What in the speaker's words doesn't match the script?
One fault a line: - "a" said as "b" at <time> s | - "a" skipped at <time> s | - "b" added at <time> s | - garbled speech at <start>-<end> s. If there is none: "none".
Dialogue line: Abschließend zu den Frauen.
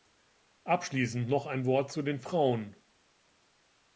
- "noch ein Wort" added at 1.3 s